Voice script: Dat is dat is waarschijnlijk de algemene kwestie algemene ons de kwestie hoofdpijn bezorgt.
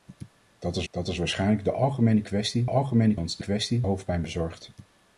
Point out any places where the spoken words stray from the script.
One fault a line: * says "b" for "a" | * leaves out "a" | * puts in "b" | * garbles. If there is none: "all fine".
all fine